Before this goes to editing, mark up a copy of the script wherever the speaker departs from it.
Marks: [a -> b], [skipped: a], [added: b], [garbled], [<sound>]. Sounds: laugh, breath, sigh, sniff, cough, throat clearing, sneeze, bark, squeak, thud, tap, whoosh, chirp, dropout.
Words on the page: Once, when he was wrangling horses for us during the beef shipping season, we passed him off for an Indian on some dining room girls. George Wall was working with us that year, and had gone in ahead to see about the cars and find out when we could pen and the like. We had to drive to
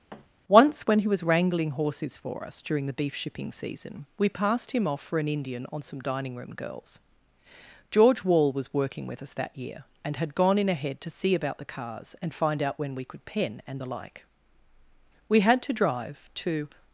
[thud] Once, when he was wrangling horses for us during the beef shipping season, we passed him off for an Indian on some dining room girls. George Wall was working with us that year, and had gone in ahead to see about the cars and find out when we could pen and the like. We had to drive to